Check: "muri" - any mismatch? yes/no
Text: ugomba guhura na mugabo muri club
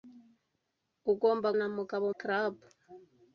yes